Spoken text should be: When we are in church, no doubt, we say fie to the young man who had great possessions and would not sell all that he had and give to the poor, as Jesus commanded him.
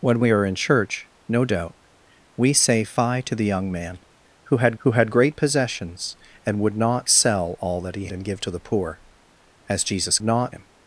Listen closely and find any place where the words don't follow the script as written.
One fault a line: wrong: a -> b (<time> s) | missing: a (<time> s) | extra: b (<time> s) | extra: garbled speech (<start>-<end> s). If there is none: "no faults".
extra: who had (4.8 s)
missing: had (8.1 s)
wrong: commanded -> not (10.2 s)